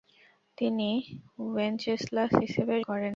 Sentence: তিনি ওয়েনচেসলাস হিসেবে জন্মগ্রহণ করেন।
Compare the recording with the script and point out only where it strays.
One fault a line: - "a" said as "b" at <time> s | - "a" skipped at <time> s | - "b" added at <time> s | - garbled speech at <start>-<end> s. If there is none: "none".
- "জন্মগ্রহণ" skipped at 2.7 s